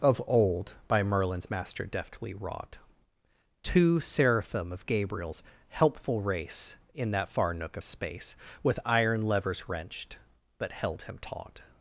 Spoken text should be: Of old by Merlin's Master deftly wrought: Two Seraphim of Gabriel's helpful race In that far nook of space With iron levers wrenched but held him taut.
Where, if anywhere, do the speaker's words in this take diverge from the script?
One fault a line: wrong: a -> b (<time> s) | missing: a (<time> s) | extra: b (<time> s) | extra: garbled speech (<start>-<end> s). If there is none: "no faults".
no faults